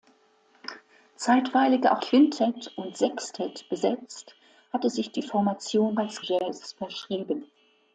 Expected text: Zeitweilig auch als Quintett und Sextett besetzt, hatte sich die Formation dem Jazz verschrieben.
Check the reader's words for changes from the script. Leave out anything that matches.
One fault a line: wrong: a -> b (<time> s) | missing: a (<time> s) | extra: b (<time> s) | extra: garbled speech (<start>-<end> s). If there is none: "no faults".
missing: als (2.0 s)
wrong: dem -> als (6.0 s)